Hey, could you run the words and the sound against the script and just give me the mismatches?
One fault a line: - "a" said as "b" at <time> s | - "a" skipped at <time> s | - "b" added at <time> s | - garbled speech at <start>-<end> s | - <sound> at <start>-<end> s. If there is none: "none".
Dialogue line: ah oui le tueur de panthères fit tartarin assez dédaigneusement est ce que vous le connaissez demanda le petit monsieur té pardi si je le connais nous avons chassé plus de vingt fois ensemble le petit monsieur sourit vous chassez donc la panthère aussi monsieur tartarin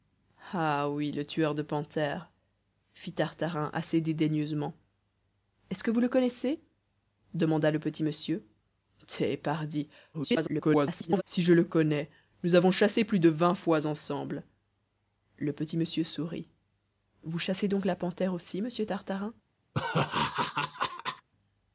- garbled speech at 10.1-11.2 s
- laugh at 19.7-21.3 s